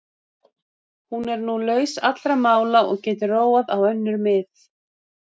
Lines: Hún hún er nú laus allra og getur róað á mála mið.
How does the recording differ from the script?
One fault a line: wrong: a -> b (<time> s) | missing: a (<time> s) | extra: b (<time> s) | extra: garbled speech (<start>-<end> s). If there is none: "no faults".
missing: hún (1.2 s)
extra: mála (2.5 s)
wrong: mála -> önnur (3.9 s)